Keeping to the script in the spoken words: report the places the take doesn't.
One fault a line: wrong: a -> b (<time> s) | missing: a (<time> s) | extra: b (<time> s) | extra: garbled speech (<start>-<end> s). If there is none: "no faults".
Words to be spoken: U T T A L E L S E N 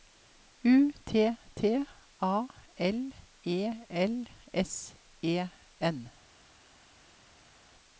no faults